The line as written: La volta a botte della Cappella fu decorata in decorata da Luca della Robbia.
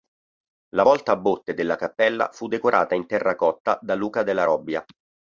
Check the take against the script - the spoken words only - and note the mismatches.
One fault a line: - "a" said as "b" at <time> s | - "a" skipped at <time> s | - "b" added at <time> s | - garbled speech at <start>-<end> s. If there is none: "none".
- "decorata" said as "terracotta" at 3.1 s